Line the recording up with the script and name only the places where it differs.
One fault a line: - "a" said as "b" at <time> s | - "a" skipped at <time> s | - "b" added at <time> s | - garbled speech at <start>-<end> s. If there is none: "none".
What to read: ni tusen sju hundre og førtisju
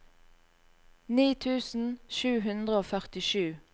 none